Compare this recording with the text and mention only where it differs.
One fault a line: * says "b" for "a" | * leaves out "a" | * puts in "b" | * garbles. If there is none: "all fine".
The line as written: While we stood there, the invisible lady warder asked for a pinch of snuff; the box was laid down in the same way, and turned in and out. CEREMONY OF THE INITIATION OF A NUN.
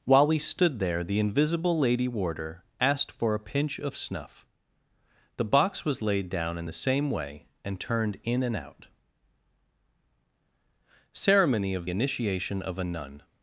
* leaves out "THE"